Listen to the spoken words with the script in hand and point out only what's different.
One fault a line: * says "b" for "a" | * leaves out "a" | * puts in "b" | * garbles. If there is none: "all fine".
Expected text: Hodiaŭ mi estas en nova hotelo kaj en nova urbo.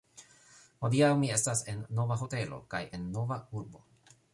all fine